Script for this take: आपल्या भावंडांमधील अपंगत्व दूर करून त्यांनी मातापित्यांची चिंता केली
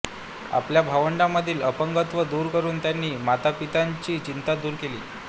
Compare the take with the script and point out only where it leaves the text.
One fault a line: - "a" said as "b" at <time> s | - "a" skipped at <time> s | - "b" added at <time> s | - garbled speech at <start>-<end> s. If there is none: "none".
- "दूर" added at 4.6 s